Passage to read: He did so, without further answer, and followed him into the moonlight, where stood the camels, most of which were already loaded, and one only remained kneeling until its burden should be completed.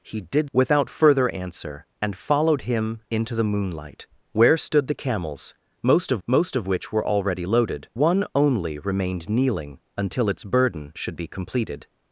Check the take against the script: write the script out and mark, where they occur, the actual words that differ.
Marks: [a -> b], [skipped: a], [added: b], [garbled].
He did [skipped: so,] without further answer, and followed him into the moonlight, where stood the camels, most of [added: most of] which were already loaded, [skipped: and] one only remained kneeling until its burden should be completed.